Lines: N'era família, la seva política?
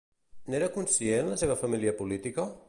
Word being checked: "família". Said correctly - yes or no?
no